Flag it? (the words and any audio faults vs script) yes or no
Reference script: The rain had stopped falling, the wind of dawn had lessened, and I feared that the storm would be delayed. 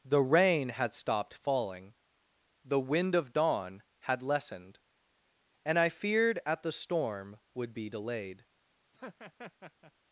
yes